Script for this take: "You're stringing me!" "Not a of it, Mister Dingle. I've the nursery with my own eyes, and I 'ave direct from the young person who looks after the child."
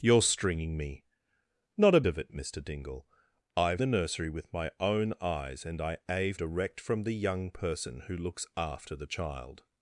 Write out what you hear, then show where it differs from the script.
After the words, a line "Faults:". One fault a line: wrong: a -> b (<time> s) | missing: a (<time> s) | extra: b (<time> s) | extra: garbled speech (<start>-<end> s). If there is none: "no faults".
"You're stringing me!" "Not a of it, Mister Dingle. I've the nursery with my own eyes, and I 'ave direct from the young person who looks after the child."
Faults:
no faults